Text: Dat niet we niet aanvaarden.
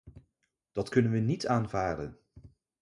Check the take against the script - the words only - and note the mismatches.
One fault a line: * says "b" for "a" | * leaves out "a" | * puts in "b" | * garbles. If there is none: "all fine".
* says "kunnen" for "niet"